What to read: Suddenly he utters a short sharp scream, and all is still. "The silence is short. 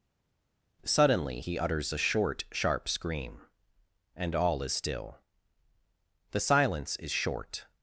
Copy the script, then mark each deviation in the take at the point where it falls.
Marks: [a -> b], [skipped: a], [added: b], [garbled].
Suddenly he utters a short sharp scream, and all is still. "The silence is short.